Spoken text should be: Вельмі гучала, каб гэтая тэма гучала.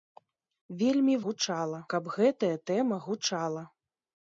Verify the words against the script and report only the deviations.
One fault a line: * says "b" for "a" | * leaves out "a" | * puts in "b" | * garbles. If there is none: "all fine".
all fine